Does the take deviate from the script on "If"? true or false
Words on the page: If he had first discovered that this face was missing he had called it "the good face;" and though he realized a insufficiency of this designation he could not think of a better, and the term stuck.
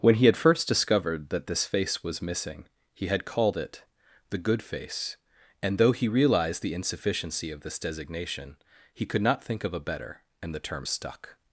true